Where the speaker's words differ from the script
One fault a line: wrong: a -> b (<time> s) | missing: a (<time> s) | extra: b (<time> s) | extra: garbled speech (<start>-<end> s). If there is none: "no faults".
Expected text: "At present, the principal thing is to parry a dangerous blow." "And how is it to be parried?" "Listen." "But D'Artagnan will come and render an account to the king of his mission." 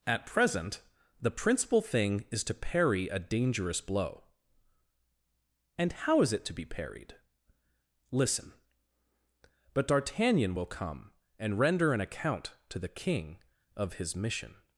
no faults